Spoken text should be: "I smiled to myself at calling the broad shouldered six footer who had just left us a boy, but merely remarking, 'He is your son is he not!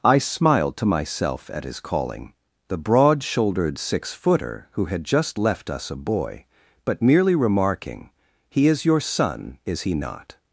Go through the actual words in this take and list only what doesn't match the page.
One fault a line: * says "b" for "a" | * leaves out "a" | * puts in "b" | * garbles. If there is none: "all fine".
* puts in "his"